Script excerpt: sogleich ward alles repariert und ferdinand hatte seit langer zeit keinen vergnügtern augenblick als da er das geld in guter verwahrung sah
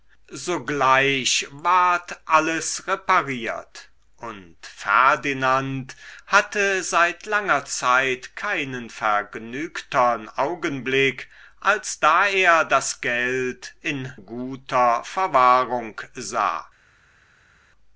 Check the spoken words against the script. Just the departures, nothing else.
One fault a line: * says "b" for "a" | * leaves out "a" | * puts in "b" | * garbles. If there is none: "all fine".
all fine